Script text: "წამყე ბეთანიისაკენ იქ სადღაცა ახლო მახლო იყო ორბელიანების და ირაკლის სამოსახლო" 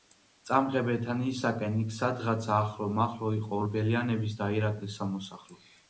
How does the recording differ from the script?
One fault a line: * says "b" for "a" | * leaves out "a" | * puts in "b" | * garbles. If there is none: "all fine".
all fine